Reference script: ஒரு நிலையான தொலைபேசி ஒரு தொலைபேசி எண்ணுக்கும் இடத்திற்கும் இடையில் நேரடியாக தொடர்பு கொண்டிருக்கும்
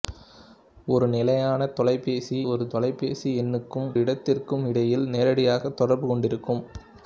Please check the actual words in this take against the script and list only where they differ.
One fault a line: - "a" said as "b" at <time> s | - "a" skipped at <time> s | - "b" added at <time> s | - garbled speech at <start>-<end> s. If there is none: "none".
none